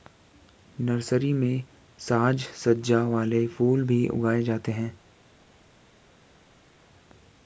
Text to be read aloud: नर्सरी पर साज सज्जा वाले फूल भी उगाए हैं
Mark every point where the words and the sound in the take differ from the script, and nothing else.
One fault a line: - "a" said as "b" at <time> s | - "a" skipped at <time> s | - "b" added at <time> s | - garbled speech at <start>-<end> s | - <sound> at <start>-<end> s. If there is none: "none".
- "पर" said as "में" at 1.3 s
- "जाते" added at 4.4 s